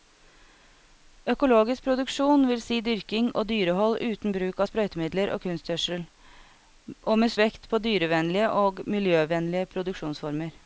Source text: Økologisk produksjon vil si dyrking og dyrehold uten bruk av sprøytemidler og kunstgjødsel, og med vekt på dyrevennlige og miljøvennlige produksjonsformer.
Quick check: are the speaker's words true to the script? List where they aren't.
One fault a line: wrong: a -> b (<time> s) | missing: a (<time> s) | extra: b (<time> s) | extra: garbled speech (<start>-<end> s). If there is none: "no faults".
no faults